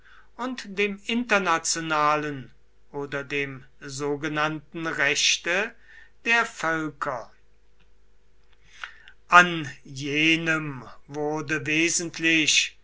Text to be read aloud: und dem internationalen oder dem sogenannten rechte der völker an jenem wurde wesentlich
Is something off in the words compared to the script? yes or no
no